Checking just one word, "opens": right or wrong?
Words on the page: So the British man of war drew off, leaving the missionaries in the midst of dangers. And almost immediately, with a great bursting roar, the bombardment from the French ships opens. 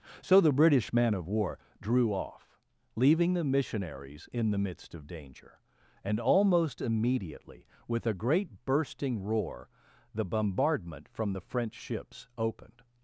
wrong